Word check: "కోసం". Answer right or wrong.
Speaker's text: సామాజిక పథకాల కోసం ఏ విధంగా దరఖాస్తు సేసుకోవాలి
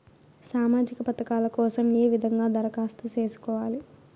right